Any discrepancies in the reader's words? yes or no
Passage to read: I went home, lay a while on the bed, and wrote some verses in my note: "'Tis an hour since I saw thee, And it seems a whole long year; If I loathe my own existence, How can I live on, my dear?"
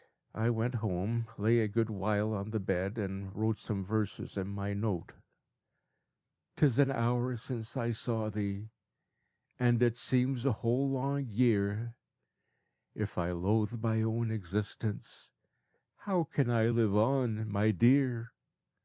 yes